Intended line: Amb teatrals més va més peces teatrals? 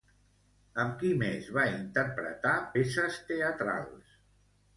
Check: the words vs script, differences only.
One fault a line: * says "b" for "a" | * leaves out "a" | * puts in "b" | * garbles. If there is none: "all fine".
* says "qui" for "teatrals"
* says "interpretar" for "més"